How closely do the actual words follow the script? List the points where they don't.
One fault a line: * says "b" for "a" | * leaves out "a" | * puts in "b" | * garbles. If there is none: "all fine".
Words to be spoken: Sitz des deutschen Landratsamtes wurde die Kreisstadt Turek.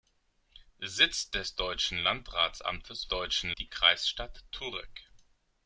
* says "deutschen" for "wurde"